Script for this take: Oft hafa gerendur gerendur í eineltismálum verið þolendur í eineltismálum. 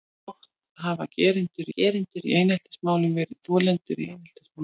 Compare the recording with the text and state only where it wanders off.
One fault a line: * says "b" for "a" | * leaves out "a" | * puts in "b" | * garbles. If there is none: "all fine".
all fine